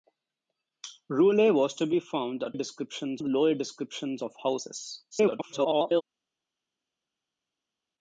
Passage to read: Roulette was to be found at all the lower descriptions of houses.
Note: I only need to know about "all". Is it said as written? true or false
false